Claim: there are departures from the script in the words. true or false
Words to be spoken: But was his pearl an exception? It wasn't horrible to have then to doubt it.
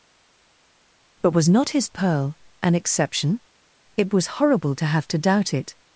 true